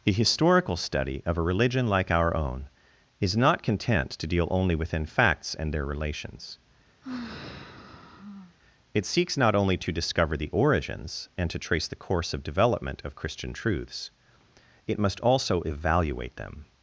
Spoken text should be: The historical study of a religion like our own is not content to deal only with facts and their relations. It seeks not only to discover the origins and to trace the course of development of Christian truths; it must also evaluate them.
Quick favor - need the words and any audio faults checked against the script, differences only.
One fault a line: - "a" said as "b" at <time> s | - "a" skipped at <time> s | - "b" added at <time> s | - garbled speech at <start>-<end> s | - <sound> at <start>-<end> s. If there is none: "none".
- "with" said as "within" at 4.7 s
- sigh at 7.0-8.6 s